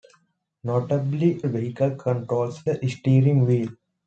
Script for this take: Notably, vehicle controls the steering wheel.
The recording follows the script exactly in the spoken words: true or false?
true